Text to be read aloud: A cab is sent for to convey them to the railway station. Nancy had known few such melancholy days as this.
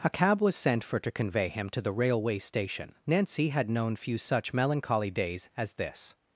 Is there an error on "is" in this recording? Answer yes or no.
yes